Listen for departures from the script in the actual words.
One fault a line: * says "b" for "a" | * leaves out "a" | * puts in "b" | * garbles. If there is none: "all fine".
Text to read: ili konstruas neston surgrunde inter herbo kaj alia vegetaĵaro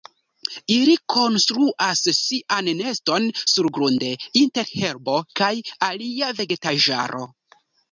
* puts in "sian"